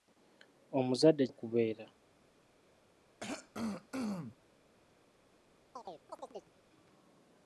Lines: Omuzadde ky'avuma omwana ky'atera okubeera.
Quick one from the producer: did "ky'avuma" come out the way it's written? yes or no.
no